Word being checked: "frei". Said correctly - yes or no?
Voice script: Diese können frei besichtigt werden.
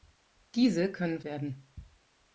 no